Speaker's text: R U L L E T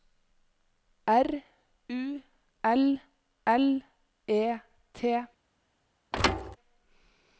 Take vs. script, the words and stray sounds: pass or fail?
fail